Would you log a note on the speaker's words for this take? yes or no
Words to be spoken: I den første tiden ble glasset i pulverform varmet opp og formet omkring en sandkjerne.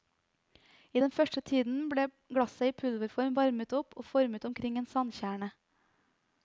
no